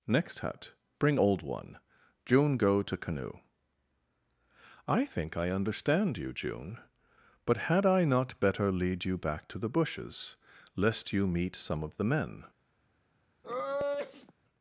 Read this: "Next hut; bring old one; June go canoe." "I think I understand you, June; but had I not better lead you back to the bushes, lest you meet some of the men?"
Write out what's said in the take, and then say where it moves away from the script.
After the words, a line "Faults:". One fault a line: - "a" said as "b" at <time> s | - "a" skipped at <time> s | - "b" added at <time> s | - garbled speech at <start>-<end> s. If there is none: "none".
"Next hut; bring old one; June go to canoe." "I think I understand you, June; but had I not better lead you back to the bushes, lest you meet some of the men?"
Faults:
- "to" added at 2.8 s